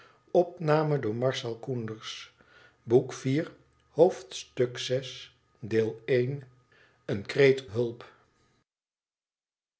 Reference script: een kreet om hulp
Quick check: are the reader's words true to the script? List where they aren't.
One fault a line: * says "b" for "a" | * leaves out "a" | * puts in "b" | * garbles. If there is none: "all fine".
* leaves out "om"